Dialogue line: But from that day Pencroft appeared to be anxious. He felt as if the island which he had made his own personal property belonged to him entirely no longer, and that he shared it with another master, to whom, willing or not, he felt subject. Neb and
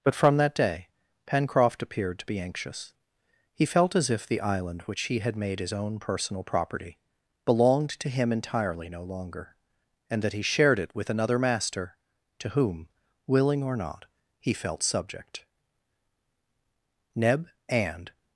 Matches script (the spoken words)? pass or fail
pass